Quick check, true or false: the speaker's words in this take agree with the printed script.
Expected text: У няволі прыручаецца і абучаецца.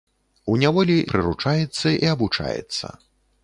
true